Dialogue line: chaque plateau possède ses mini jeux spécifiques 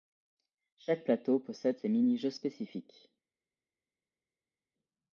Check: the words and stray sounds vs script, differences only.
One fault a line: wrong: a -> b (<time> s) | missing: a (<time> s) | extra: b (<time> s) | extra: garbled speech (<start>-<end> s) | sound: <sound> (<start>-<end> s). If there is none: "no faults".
no faults